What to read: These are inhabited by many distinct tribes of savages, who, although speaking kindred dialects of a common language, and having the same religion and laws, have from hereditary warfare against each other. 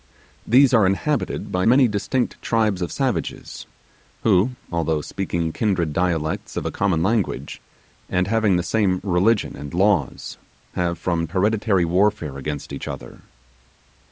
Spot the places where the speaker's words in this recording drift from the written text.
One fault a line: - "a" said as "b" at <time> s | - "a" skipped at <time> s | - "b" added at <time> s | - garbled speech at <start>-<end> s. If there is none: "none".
none